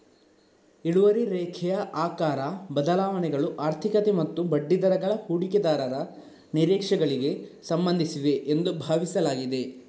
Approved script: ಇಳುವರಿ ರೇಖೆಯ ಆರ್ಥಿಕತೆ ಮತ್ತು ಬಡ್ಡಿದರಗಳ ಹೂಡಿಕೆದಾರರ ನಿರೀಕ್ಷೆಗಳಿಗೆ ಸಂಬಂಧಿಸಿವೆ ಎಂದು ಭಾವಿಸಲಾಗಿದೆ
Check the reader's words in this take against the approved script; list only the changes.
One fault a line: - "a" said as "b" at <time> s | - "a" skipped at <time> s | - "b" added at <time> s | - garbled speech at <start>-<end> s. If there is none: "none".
- "ಆಕಾರ ಬದಲಾವಣೆಗಳು" added at 1.9 s